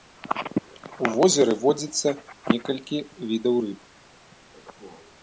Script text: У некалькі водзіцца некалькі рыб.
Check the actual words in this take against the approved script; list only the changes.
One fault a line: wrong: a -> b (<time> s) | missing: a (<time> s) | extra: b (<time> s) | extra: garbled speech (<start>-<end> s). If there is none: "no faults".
wrong: некалькі -> возеры (1.2 s)
extra: відаў (3.3 s)